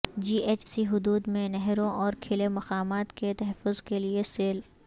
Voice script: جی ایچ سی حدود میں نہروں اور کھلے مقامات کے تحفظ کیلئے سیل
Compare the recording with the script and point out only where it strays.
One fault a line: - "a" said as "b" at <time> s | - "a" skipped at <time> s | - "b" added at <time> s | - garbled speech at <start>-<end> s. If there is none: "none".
none